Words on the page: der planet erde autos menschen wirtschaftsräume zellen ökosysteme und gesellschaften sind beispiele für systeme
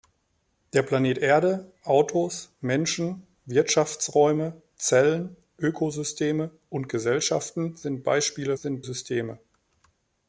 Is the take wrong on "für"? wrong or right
wrong